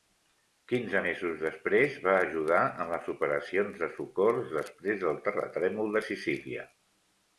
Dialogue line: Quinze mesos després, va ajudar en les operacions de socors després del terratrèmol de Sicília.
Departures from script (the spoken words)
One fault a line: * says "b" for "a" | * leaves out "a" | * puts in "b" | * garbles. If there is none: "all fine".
all fine